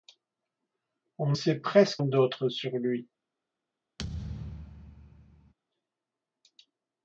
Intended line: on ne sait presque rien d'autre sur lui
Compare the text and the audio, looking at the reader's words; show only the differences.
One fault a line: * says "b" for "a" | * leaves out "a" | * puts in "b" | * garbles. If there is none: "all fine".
* leaves out "ne"
* leaves out "rien"